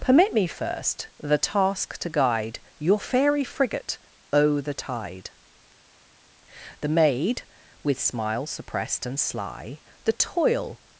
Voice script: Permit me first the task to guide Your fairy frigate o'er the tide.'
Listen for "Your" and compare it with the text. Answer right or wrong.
right